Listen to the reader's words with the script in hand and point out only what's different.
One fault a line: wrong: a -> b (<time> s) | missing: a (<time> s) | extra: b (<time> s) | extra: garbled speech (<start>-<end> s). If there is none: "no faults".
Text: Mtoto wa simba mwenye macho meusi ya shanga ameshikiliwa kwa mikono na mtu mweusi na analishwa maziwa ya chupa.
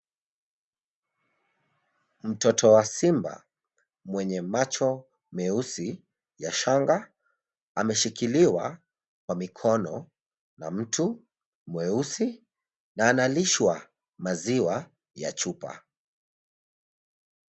no faults